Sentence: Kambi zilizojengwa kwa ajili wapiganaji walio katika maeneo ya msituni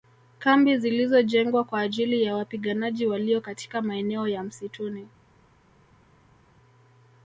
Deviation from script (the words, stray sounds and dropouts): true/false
true